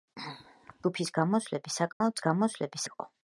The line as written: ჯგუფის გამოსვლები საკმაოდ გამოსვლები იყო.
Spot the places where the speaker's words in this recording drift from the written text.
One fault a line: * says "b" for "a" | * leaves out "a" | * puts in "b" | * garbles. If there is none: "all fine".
all fine